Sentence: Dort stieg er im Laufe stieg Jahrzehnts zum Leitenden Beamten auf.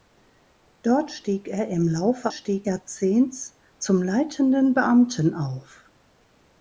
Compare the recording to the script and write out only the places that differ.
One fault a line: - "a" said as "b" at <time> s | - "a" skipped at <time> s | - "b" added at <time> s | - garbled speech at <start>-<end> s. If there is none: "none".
none